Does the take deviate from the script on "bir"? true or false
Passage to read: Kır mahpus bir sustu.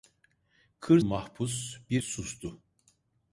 false